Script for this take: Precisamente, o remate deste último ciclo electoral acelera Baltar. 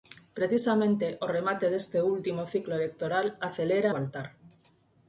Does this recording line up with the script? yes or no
yes